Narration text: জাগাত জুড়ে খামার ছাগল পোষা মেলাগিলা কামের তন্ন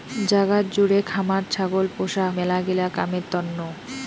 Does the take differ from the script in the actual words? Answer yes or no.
no